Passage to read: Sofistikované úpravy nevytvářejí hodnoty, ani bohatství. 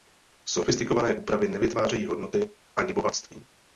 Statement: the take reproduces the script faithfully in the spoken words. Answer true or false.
true